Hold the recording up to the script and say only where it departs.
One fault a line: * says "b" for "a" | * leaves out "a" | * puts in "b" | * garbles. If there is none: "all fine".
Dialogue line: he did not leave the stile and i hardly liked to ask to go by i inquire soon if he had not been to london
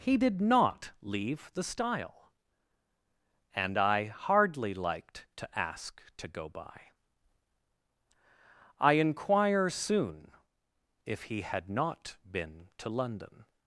all fine